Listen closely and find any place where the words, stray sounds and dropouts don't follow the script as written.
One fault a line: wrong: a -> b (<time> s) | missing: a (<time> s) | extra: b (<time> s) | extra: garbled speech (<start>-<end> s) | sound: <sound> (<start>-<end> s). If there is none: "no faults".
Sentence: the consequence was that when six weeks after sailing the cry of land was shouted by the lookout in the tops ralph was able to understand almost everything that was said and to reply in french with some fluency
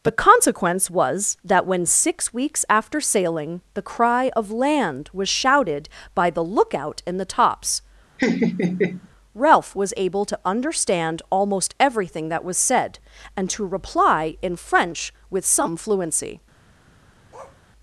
sound: laugh (8.2-9.1 s)
sound: bark (17.3-17.6 s)